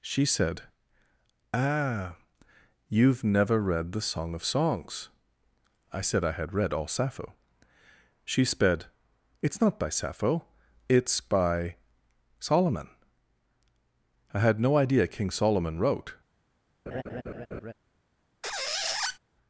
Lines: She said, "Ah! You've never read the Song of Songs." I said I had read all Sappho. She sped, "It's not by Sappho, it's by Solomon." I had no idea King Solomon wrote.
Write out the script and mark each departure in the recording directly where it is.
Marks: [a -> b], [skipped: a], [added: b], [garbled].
She said, "Ah! You've never read the Song of Songs." I said I had read all Sappho. She sped, "It's not by Sappho, it's by Solomon." I had no idea King Solomon wrote.